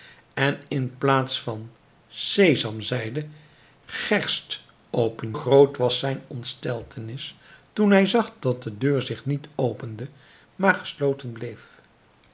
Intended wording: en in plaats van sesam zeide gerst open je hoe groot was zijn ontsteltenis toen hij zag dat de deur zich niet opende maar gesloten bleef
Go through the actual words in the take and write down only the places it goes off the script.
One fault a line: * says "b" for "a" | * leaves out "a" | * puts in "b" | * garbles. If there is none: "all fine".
* leaves out "je hoe"